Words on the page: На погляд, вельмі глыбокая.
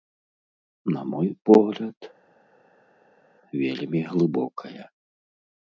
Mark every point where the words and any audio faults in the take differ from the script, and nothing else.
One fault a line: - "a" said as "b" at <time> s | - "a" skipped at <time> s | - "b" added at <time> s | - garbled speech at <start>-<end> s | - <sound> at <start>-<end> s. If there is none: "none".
- "мой" added at 1.0 s